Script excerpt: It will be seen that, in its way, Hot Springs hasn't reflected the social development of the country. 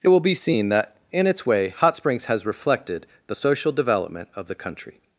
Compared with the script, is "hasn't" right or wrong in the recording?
wrong